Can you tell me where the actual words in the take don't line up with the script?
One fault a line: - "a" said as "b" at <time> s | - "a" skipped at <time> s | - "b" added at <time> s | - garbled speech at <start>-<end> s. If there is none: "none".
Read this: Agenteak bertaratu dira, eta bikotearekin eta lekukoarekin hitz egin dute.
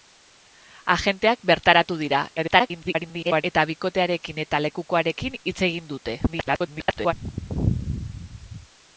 - garbled speech at 2.4-3.4 s
- garbled speech at 6.3-7.1 s